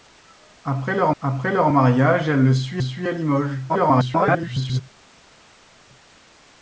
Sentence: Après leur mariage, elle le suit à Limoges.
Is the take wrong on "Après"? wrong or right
right